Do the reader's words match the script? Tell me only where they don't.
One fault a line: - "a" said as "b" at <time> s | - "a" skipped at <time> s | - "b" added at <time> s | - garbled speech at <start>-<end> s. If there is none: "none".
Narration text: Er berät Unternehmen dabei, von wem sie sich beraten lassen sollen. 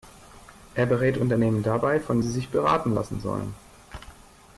- "wem" skipped at 2.2 s